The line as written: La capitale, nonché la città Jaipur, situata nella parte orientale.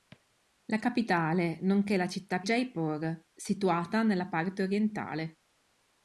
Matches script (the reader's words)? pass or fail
pass